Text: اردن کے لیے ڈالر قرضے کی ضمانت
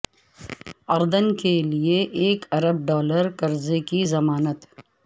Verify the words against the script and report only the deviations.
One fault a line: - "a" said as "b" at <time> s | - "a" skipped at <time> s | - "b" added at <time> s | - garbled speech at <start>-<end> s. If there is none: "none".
- "ایک ارب" added at 2.2 s